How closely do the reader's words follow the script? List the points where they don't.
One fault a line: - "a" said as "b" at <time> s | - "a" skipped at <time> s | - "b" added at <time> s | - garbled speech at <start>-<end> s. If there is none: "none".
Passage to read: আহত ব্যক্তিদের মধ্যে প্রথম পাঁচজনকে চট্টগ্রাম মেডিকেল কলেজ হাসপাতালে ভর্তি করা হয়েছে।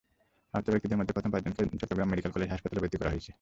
none